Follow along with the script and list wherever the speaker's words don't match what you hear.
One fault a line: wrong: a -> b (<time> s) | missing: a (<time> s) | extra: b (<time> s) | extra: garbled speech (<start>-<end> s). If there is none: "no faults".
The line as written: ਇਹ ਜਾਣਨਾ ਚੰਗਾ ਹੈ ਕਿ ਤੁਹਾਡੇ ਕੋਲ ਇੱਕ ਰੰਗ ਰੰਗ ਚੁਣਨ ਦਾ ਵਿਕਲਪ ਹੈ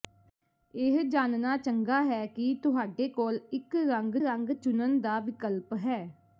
no faults